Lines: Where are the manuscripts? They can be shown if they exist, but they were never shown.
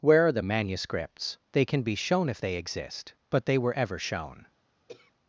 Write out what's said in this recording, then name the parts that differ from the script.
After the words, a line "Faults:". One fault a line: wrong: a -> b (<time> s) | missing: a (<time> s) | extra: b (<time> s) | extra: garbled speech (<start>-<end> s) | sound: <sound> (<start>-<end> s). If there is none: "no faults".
Where are the manuscripts? They can be shown if they exist, but they were ever shown.
Faults:
wrong: never -> ever (3.7 s)
sound: throat clearing (4.9-5.1 s)